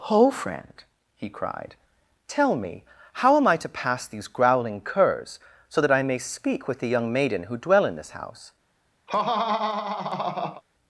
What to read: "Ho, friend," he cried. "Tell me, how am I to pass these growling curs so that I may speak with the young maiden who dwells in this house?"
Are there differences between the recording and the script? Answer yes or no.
yes